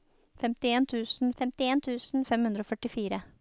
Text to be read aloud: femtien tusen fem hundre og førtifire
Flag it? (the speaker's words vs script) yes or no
yes